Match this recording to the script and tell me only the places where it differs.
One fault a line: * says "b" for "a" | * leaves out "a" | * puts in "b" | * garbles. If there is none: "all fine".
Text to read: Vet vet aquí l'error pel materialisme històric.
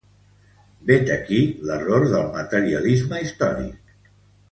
* leaves out "vet"
* says "del" for "pel"